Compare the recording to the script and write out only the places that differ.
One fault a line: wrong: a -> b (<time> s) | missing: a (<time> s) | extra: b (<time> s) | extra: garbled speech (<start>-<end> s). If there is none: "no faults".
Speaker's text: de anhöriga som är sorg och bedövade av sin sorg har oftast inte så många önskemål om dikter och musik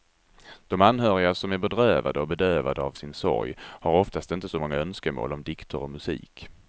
wrong: sorg -> bedrövade (1.6 s)